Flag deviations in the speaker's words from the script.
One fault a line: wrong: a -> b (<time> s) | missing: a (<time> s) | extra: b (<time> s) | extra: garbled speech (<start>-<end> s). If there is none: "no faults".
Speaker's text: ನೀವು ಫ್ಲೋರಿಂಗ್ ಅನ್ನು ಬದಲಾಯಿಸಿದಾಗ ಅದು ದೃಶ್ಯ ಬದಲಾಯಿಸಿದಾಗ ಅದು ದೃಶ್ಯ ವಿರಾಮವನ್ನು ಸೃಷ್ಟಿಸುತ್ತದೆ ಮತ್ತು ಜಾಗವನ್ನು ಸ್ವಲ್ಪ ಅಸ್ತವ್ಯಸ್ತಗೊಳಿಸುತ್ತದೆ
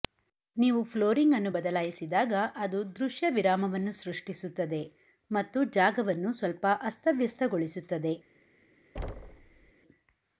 missing: ಬದಲಾಯಿಸಿದಾಗ ಅದು ದೃಶ್ಯ (3.3 s)